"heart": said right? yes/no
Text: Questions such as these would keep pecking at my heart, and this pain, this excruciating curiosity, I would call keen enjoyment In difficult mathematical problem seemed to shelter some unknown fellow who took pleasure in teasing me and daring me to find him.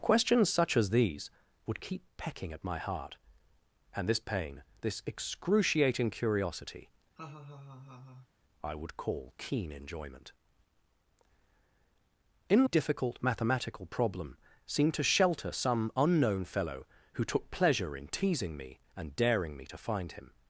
yes